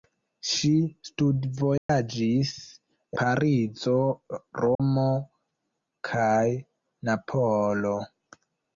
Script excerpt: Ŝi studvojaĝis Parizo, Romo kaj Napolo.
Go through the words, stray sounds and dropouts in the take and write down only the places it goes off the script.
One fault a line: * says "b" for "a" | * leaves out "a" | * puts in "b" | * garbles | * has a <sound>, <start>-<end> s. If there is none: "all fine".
* has a dropout, 1.8-1.9 s
* has a dropout, 4.7-4.8 s